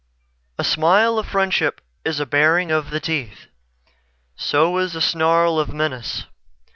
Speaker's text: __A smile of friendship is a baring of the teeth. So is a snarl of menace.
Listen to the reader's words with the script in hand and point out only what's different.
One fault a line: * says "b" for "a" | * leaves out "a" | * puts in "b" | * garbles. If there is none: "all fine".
all fine